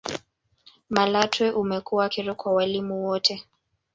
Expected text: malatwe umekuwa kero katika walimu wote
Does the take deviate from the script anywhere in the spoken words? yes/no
yes